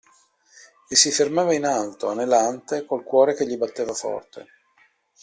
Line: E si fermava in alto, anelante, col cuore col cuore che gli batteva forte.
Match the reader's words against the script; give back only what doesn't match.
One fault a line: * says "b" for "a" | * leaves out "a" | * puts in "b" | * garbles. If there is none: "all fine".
* leaves out "col cuore"